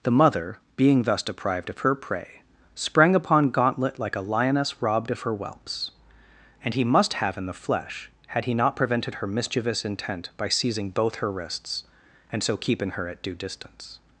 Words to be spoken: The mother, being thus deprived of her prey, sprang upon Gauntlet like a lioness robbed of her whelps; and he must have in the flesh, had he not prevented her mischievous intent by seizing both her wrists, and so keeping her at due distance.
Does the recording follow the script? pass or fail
pass